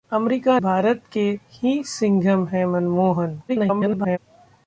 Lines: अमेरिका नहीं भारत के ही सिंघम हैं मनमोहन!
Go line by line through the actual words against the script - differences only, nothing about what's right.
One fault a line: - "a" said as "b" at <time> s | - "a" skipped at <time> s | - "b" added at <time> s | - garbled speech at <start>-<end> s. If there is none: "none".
- "नहीं" skipped at 0.6 s
- garbled speech at 3.5-4.2 s